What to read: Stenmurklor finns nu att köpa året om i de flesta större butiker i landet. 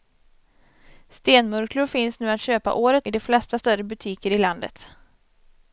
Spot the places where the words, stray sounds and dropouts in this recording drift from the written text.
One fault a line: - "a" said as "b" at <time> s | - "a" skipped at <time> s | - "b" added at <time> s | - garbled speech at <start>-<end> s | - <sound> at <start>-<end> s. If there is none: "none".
- "om" skipped at 3.1 s